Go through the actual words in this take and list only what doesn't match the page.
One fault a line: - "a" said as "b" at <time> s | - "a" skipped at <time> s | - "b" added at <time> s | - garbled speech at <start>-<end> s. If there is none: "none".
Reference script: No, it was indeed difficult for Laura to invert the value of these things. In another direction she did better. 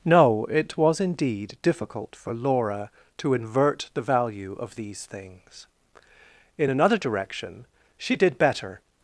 none